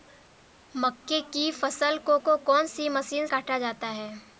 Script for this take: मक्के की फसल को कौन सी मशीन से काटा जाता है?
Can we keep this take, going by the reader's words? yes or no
no